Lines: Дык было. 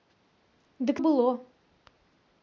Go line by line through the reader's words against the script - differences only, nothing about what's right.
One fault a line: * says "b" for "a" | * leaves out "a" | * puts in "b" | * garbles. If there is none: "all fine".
all fine